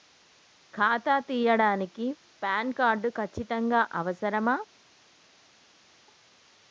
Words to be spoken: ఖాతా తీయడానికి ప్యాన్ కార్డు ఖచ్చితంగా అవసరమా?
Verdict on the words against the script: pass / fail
pass